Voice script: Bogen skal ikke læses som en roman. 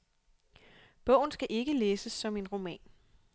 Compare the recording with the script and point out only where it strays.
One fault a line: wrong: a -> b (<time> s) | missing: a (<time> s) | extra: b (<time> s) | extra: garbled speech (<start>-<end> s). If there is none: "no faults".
no faults